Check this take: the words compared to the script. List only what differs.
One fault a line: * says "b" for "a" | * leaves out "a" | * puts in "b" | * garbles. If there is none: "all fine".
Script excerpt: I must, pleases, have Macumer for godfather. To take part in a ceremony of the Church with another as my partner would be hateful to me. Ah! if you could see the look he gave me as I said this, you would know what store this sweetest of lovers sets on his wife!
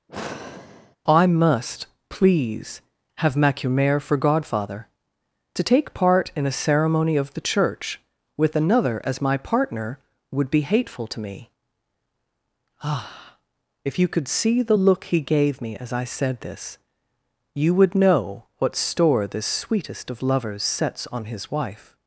* says "please" for "pleases"